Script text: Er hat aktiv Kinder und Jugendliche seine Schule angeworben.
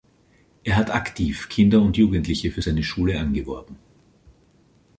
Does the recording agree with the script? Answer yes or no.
no